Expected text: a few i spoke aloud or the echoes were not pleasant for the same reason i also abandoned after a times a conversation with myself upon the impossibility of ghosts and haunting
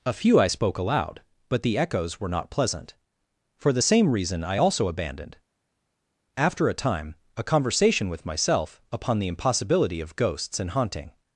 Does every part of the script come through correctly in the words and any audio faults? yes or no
no